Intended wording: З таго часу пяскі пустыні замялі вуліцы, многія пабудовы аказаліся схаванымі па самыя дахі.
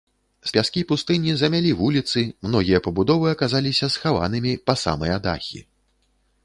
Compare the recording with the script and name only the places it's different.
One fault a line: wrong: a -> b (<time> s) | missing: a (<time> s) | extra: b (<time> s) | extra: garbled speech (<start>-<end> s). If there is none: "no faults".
missing: таго часу (0.5 s)